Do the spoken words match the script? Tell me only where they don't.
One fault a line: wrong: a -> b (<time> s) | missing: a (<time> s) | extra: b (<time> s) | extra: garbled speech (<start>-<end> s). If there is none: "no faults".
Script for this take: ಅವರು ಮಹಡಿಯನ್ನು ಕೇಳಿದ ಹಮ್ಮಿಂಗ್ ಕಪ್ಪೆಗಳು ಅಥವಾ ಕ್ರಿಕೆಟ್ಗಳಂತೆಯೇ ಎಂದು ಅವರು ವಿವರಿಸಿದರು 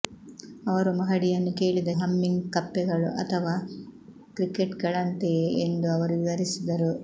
no faults